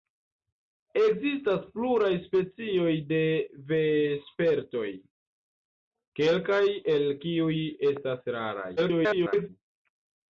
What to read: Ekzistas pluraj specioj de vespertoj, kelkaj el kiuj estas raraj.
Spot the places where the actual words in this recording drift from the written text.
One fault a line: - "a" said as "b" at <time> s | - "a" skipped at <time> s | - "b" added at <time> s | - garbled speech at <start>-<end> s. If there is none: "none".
- garbled speech at 8.8-9.5 s